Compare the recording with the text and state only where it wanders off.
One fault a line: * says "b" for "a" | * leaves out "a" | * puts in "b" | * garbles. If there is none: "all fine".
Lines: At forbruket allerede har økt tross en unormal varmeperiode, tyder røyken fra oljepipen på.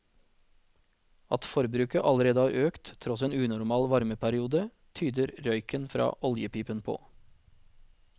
all fine